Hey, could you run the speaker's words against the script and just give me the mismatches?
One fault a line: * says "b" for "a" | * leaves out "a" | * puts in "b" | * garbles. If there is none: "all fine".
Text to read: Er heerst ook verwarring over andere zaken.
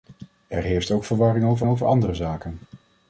* puts in "over"